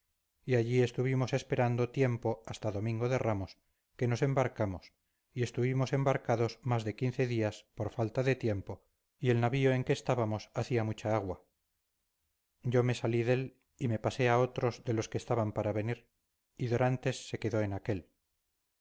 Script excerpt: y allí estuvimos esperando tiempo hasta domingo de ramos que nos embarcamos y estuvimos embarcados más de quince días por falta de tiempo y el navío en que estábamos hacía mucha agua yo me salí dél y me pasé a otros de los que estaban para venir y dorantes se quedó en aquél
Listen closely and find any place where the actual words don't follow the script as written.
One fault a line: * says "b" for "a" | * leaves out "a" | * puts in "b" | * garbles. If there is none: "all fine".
all fine